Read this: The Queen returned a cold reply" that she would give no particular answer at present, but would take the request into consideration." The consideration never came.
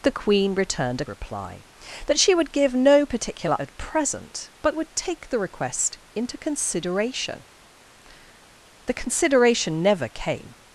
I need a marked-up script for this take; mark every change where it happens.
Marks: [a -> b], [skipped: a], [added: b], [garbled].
The Queen returned a [skipped: cold] reply" that she would give no particular [skipped: answer] at present, but would take the request into consideration." The consideration never came.